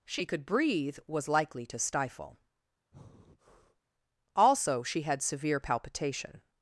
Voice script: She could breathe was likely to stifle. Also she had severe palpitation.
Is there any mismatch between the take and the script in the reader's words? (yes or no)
no